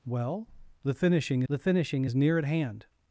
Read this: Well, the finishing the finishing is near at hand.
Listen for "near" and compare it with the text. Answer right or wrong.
right